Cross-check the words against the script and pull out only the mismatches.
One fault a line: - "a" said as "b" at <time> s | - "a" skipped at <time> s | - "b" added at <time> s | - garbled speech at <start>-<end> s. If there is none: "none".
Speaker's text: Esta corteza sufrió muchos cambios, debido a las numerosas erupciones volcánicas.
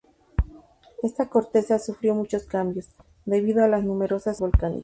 - "erupciones" skipped at 4.4 s